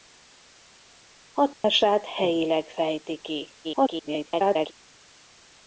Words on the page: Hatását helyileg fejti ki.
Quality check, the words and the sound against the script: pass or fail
fail